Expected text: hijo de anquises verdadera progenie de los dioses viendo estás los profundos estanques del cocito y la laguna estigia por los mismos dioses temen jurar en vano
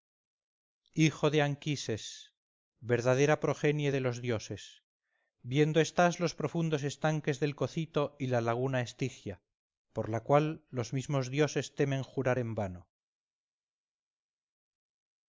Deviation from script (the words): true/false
true